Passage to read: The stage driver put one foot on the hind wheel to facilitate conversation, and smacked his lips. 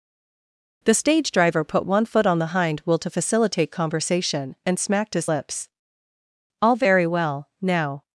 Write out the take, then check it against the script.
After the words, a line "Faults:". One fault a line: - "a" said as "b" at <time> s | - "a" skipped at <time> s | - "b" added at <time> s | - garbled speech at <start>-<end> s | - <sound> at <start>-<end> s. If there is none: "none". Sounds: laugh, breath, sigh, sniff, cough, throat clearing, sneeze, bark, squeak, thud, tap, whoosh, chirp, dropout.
The stage driver put one foot on the hind wheel to facilitate conversation, and smacked his lips. "All very well. Now
Faults:
- "All very well Now" added at 6.6 s